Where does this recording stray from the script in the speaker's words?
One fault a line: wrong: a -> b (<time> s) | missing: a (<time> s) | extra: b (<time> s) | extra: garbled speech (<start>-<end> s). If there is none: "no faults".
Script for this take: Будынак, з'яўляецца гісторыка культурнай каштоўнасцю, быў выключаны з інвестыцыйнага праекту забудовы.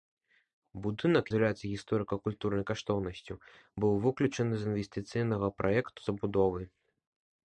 no faults